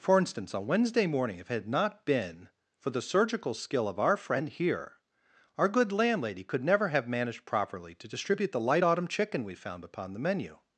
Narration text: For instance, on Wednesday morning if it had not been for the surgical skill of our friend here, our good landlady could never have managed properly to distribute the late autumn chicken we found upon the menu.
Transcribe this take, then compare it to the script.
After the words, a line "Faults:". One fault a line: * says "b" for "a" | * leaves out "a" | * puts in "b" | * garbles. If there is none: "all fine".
For instance, on Wednesday morning if it had not been for the surgical skill of our friend here, our good landlady could never have managed properly to distribute the light autumn chicken we found upon the menu.
Faults:
* says "light" for "late"